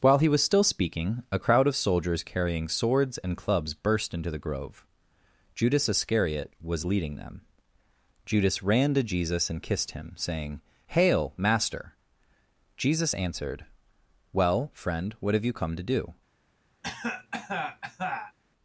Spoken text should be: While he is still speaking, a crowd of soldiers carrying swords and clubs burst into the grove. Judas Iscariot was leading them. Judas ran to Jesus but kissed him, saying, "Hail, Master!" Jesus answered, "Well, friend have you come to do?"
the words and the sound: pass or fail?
fail